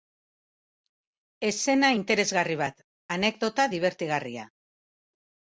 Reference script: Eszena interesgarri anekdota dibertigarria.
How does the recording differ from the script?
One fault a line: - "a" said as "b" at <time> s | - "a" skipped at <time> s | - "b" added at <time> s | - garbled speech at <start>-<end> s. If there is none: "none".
- "bat" added at 2.6 s